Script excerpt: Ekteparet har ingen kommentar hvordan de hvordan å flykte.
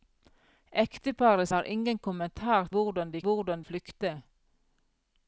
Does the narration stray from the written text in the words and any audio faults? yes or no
no